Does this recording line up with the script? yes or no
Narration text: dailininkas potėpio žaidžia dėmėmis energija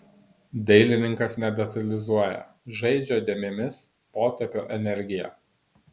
no